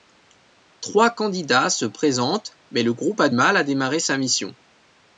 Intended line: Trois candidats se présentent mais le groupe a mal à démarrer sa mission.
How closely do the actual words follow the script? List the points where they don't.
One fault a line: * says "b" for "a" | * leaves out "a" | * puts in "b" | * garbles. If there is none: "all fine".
all fine